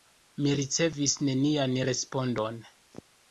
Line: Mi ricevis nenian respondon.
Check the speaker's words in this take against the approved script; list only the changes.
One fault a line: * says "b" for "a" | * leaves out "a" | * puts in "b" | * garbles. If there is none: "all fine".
all fine